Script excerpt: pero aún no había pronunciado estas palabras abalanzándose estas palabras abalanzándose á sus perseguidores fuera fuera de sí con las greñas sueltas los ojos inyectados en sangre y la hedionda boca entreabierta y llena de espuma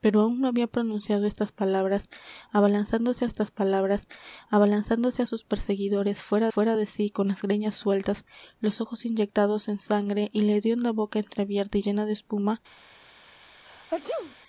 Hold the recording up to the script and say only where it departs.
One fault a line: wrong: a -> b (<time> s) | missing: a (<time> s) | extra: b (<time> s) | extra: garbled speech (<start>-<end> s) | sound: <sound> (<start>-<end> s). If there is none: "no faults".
sound: sneeze (13.7-14.4 s)